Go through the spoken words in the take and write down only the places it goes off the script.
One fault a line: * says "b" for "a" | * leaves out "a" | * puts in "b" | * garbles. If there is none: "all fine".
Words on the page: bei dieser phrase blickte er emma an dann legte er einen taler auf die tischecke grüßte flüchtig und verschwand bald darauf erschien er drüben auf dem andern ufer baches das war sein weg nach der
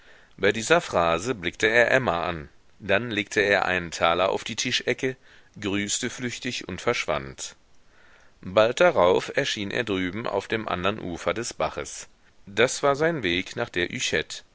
* puts in "des"